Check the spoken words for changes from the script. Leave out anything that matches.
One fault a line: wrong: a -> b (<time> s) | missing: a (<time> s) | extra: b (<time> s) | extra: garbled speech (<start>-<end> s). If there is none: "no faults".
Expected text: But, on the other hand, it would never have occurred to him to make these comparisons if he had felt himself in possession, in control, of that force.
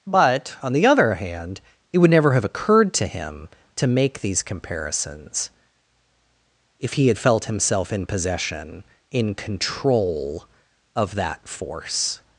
no faults